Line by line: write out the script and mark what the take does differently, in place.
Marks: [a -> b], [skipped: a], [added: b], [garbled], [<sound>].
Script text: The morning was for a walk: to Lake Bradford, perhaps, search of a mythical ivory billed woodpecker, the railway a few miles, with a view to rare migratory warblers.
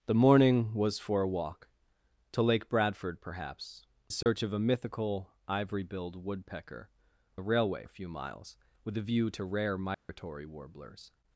The morning was for a walk: to Lake Bradford, perhaps, search [dropout] of a mythical ivory billed woodpecker, the railway a few miles, with a view to rare migratory [dropout] warblers.